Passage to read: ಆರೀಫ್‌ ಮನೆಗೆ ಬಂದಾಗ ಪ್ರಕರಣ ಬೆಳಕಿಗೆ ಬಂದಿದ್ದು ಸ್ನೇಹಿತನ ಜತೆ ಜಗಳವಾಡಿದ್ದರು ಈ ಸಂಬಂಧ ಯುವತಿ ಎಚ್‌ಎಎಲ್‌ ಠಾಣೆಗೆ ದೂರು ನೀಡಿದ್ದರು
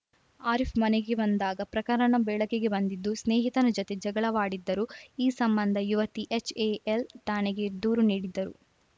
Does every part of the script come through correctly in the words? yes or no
yes